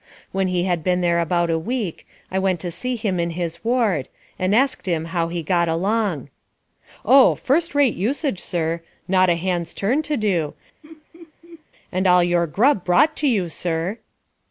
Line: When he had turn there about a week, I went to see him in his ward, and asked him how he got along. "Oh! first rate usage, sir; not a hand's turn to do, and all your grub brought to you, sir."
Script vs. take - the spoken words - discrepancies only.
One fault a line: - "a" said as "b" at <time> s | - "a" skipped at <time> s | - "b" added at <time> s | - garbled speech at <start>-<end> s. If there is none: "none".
- "turn" said as "been" at 0.8 s